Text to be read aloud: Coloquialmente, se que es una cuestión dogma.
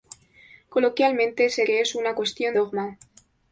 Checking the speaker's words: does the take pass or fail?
pass